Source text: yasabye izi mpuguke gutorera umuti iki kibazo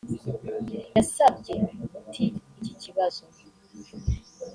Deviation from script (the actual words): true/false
true